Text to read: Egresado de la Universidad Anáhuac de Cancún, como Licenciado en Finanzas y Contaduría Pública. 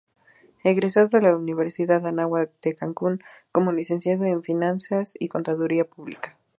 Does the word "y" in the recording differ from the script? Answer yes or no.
no